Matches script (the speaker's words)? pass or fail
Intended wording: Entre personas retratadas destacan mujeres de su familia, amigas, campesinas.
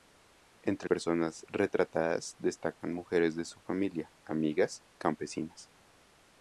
pass